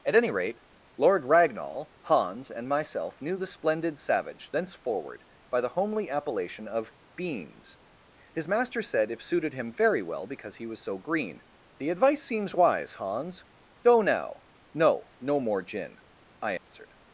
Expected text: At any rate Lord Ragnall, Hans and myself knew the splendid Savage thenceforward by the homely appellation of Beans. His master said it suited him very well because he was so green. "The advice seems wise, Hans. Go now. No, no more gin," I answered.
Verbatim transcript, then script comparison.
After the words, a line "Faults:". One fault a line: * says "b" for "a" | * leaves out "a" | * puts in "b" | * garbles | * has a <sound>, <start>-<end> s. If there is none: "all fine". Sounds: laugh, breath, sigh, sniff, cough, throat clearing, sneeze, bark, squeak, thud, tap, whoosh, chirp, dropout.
At any rate Lord Ragnall, Hans and myself knew the splendid Savage thenceforward by the homely appellation of Beans. His master said if suited him very well because he was so green. "The advice seems wise, Hans. Go now. No, no more gin," I answered.
Faults:
* says "if" for "it"
* has a dropout, 16.6-16.7 s